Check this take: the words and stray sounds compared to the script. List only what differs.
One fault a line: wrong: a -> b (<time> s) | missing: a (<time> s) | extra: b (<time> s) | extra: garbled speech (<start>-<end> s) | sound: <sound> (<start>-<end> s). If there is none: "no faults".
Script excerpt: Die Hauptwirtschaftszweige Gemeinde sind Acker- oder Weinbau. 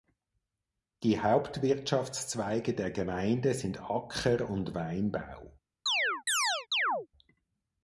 extra: der (2.7 s)
wrong: oder -> und (4.5 s)
sound: chirp (5.9-7.1 s)